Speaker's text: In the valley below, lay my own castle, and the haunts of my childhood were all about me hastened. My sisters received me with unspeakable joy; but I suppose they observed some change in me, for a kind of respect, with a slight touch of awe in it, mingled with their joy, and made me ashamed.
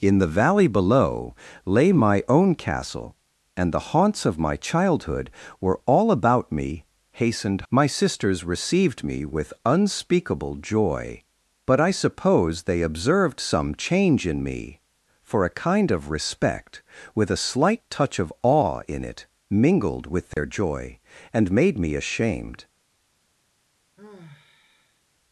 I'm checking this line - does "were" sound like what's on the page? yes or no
yes